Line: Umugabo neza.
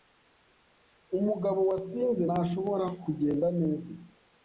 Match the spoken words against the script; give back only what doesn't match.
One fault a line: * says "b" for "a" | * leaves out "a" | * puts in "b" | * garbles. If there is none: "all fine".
* puts in "wasinze ntashobora kugenda"